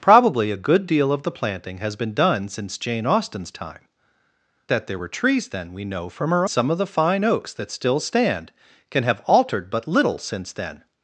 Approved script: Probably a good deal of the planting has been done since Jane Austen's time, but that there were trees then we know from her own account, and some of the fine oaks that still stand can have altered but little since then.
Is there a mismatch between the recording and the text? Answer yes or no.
yes